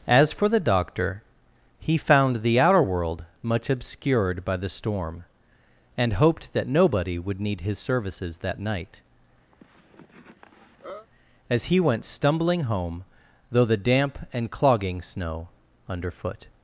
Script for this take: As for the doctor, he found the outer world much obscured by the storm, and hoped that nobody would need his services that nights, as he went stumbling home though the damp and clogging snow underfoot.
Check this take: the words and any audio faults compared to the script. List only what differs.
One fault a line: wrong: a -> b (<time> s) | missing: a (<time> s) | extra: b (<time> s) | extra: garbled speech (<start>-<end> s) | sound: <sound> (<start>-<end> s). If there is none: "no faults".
wrong: nights -> night (8.6 s)
sound: cough (9.5-11.1 s)